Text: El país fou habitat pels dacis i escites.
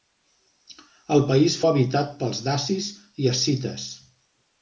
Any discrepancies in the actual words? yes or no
yes